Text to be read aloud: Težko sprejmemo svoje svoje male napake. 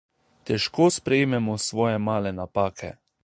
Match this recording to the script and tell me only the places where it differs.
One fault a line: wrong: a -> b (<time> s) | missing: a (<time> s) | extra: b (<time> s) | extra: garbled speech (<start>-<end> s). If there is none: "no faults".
missing: svoje (2.0 s)